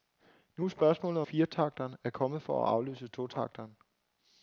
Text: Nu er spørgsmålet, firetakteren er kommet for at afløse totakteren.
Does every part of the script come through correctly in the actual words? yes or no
yes